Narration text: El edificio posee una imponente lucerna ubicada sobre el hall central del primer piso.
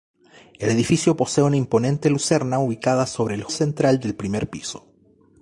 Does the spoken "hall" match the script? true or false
false